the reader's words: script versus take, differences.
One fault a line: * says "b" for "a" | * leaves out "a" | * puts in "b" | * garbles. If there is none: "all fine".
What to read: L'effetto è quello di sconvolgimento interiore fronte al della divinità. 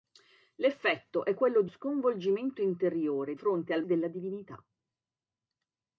all fine